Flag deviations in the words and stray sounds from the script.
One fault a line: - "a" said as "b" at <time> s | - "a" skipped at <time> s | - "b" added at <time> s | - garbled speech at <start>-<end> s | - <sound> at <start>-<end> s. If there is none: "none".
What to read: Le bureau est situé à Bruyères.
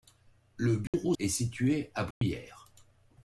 - dropout at 0.9-0.9 s
- dropout at 2.1-2.2 s